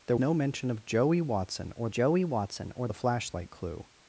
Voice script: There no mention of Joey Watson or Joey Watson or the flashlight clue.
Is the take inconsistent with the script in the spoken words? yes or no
no